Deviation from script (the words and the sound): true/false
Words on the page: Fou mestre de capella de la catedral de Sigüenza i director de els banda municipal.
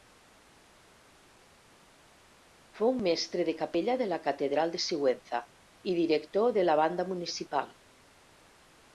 true